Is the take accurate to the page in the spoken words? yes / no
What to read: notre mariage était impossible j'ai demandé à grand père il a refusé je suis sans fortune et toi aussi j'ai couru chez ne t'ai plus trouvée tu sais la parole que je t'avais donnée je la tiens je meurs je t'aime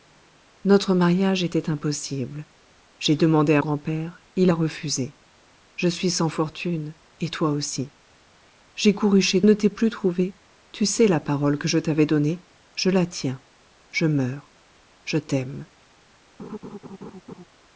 yes